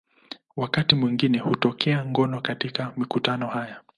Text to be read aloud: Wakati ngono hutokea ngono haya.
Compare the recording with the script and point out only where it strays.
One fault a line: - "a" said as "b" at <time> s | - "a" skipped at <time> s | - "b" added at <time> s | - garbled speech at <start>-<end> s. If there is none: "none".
- "ngono" said as "mwingine" at 0.9 s
- "katika mikutano" added at 2.4 s